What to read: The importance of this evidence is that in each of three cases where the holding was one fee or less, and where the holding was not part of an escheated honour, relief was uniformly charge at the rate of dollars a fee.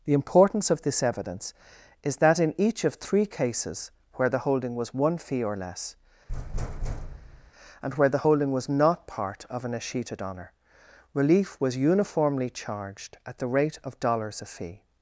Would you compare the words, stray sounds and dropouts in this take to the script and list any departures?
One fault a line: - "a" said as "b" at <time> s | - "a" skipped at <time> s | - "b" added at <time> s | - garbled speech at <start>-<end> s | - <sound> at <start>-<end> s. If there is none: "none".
- thud at 6.3-7.5 s
- "charge" said as "charged" at 12.5 s